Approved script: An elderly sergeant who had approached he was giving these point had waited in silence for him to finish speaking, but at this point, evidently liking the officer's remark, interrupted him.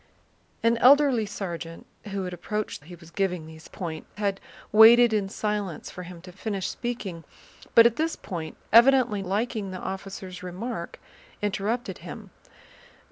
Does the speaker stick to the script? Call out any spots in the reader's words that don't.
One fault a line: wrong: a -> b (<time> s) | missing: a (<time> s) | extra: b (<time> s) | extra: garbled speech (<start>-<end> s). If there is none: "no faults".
no faults